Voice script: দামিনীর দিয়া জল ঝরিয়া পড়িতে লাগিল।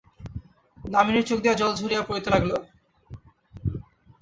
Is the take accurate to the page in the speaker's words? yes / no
no